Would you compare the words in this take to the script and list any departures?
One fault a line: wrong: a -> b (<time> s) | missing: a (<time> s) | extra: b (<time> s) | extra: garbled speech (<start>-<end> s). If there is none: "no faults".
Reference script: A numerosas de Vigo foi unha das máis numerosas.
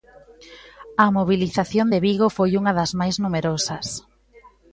wrong: numerosas -> mobilización (1.2 s)